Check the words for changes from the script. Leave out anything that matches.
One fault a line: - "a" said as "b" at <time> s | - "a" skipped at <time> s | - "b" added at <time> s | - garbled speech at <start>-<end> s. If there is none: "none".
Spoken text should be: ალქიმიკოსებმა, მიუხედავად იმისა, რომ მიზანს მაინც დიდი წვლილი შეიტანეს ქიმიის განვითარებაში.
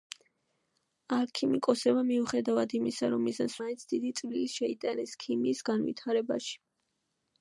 none